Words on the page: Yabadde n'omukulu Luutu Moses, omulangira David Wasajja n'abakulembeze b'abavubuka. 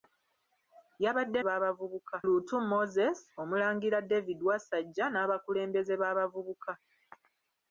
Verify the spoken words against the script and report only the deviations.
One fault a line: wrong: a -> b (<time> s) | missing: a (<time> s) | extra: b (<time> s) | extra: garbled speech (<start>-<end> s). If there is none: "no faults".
wrong: n'omukulu -> b'abavubuka (1.5 s)